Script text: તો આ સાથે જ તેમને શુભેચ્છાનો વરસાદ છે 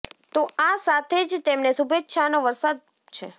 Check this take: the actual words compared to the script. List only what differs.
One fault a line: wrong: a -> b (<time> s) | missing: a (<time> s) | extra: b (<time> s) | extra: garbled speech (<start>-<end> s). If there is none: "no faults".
no faults